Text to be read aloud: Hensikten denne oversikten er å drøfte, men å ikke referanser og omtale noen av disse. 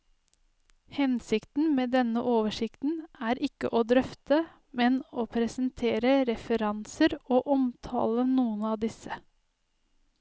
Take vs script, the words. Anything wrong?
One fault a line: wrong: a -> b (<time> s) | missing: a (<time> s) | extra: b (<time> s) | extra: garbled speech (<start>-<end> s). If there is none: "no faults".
extra: med (1.8 s)
extra: ikke (3.5 s)
wrong: ikke -> presentere (5.3 s)